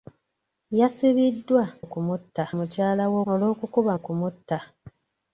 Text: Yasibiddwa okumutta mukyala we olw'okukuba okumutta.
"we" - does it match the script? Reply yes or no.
yes